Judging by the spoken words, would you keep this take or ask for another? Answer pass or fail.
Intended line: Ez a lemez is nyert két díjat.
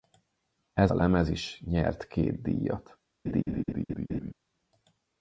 pass